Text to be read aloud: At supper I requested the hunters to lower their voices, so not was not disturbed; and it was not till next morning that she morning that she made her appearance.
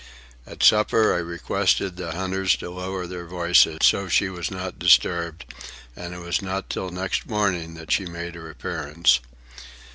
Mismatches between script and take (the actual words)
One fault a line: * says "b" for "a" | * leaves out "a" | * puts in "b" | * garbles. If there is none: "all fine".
* says "she" for "not"
* leaves out "morning that she"